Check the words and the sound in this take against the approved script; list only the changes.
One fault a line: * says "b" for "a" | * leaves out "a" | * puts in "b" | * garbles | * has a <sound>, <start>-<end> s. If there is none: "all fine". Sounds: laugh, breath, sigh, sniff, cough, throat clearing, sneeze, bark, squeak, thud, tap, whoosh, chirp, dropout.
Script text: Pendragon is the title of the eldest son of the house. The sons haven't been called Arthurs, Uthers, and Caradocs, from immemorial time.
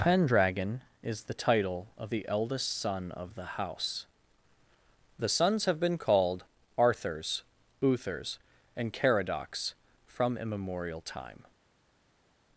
* says "have" for "haven't"